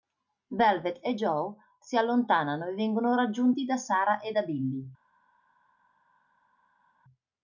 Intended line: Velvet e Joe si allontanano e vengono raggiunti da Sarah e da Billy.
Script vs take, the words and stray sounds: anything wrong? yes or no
no